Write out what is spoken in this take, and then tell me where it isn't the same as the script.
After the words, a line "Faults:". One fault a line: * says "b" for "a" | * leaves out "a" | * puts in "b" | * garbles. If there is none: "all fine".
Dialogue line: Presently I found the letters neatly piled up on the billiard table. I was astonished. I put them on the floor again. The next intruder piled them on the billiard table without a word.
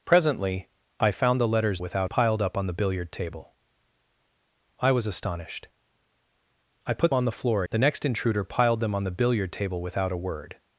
Presently I found the letters without piled up on the billiard table. I was astonished. I put on the floor. The next intruder piled them on the billiard table without a word.
Faults:
* says "without" for "neatly"
* leaves out "them"
* leaves out "again"